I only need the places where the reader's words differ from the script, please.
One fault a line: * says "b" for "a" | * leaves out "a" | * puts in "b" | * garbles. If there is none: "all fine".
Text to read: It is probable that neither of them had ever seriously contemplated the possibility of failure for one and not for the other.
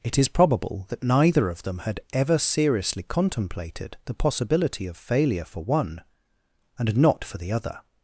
all fine